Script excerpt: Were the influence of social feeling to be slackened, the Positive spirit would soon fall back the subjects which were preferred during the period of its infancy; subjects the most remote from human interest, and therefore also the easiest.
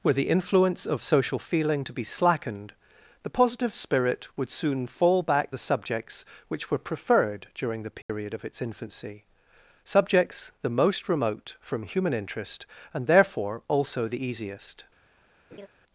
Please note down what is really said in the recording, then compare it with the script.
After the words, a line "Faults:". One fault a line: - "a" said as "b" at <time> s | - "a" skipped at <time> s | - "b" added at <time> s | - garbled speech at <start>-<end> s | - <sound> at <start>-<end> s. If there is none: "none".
Were the influence of social feeling to be slackened, the Positive spirit would soon fall back the subjects which were preferred during the period of its infancy; subjects the most remote from human interest, and therefore also the easiest.
Faults:
- dropout at 8.0-8.1 s
- laugh at 15.5-15.7 s